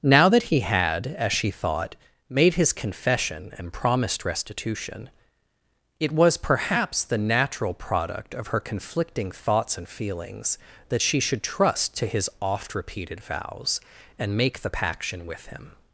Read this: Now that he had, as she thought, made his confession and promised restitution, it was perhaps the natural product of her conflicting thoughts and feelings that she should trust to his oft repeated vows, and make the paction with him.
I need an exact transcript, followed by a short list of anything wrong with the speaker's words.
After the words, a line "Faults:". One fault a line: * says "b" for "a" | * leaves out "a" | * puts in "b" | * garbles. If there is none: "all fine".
Now that he had, as she thought, made his confession and promised restitution, it was perhaps the natural product of her conflicting thoughts and feelings that she should trust to his oft repeated vows, and make the paction with him.
Faults:
all fine